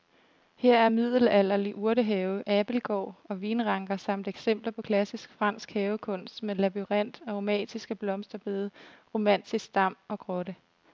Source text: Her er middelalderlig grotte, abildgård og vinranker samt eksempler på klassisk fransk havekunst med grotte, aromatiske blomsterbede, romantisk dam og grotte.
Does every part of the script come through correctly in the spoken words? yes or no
no